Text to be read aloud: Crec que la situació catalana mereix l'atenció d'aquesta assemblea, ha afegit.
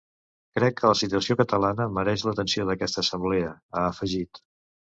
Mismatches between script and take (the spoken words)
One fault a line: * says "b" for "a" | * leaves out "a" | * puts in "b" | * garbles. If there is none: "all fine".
all fine